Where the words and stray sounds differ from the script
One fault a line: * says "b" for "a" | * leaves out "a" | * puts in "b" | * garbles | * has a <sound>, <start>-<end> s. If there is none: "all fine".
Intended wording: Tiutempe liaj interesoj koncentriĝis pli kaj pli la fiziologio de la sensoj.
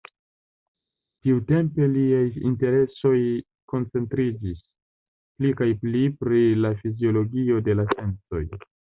* puts in "pri"